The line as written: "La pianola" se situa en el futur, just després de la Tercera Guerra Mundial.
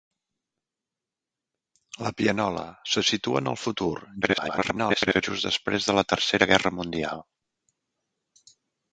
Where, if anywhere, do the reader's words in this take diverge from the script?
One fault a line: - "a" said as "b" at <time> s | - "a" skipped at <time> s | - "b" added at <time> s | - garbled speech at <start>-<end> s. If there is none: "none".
- garbled speech at 4.2-5.2 s